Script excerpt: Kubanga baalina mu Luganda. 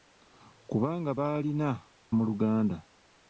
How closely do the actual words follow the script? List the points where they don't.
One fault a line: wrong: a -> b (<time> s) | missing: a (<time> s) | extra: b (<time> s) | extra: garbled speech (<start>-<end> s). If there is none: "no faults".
no faults